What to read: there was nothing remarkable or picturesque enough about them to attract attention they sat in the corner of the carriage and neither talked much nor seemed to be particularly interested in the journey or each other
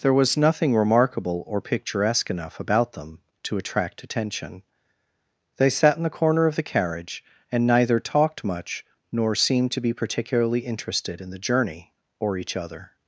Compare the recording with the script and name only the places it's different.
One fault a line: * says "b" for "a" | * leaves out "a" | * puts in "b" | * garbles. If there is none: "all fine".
all fine